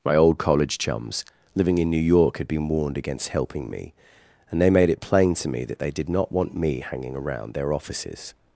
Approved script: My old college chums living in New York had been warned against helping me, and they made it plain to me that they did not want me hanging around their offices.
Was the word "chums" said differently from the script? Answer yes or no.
no